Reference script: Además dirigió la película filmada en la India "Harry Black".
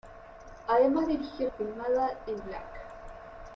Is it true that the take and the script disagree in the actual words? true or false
true